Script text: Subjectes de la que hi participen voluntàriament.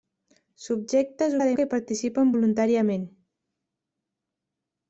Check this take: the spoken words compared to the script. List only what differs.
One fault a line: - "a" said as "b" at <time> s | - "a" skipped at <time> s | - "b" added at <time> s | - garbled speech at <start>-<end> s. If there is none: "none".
none